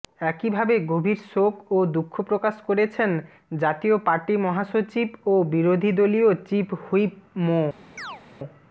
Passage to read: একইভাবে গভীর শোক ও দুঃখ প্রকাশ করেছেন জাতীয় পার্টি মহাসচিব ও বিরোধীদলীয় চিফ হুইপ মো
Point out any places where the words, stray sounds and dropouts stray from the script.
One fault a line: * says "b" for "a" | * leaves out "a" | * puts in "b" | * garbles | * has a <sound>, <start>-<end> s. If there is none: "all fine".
* has a chirp, 8.0-8.2 s